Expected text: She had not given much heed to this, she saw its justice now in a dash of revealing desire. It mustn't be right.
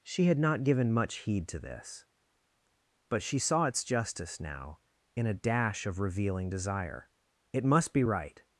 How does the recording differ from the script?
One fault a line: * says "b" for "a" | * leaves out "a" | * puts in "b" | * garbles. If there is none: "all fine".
* puts in "but"
* says "must" for "mustn't"